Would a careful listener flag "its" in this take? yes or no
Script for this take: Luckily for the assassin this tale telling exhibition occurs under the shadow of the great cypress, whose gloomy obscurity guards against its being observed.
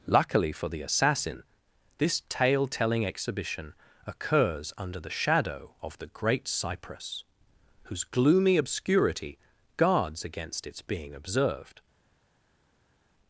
no